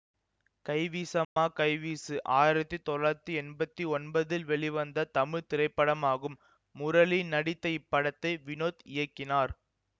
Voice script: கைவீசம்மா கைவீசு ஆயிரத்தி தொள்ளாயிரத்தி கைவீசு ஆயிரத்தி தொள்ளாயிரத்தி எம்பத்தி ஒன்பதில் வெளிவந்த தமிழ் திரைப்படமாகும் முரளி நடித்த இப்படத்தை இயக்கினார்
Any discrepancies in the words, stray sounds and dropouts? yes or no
yes